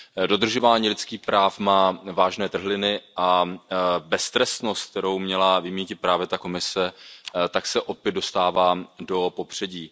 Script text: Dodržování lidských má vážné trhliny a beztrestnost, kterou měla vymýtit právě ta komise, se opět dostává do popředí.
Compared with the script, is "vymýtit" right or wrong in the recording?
right